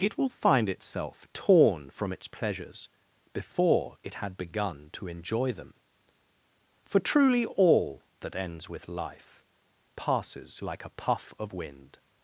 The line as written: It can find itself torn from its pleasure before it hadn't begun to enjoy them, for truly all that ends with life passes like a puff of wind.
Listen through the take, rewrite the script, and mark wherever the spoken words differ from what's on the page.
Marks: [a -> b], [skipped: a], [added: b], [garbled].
It [can -> will] find itself torn from its [pleasure -> pleasures] before it [hadn't -> had] begun to enjoy them, for truly all that ends with life passes like a puff of wind.